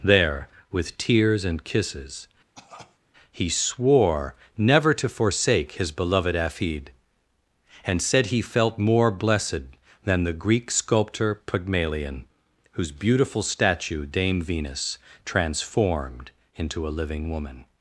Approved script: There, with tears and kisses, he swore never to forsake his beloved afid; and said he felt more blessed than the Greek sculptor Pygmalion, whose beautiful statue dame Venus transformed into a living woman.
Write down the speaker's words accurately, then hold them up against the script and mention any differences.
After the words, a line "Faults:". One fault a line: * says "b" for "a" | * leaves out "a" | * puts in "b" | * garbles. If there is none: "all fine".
There, with tears and kisses, he swore never to forsake his beloved afid; and said he felt more blessed than the Greek sculptor Pygmalion, whose beautiful statue dame Venus transformed into a living woman.
Faults:
all fine